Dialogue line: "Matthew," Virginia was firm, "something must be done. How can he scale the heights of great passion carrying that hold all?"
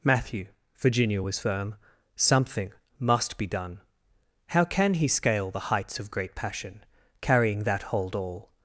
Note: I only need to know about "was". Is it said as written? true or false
true